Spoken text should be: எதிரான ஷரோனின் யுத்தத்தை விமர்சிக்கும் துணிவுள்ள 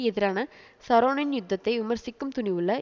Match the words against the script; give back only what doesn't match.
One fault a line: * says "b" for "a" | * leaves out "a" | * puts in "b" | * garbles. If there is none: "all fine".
all fine